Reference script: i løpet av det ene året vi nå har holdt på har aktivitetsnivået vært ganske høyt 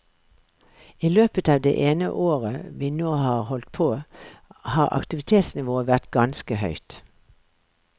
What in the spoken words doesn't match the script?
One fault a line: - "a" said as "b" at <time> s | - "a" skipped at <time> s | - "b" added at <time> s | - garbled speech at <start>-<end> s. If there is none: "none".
none